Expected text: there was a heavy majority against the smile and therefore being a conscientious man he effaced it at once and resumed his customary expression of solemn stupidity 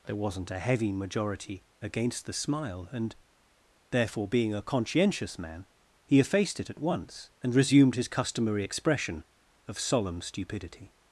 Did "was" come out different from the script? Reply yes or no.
yes